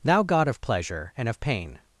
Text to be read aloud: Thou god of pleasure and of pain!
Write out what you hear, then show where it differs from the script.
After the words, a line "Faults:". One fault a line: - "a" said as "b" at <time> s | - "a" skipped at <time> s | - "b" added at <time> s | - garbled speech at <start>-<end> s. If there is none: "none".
Thou god of pleasure and of pain!
Faults:
none